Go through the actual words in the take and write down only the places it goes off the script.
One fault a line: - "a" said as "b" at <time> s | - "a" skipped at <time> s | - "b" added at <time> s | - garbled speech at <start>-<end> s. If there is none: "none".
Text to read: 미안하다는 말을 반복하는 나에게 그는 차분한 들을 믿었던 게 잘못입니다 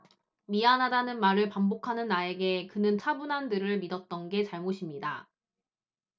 none